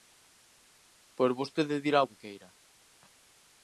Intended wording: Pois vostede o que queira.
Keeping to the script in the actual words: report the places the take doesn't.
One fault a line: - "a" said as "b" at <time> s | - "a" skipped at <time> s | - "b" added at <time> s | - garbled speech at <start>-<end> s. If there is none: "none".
- "dirá" added at 1.9 s